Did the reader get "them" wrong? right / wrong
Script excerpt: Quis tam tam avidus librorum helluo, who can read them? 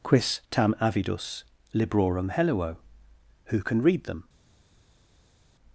right